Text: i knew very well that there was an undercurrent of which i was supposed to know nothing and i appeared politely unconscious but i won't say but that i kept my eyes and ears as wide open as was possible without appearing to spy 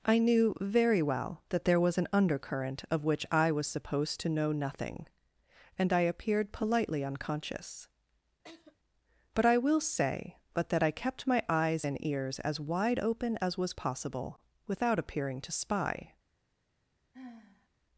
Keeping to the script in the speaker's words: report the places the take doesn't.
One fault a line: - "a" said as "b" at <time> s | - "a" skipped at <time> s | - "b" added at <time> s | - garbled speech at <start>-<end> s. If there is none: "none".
- "won't" said as "will" at 9.6 s